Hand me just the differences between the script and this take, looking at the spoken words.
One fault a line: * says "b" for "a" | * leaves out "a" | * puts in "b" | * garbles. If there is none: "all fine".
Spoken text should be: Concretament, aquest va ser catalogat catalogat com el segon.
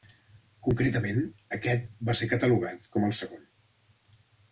* leaves out "catalogat"